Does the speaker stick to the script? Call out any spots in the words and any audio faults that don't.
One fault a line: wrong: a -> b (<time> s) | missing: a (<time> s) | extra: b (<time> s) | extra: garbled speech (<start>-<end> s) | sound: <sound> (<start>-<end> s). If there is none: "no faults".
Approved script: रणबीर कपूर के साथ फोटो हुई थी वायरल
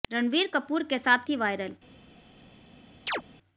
missing: फोटो हुई (1.3 s)
sound: chirp (3.1-3.2 s)